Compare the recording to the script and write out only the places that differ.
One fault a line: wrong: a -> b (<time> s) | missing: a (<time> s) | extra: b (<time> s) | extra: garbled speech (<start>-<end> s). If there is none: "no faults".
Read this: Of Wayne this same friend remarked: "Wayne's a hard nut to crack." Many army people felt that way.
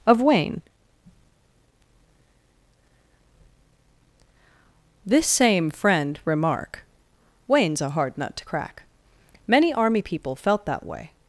wrong: remarked -> remark (6.2 s)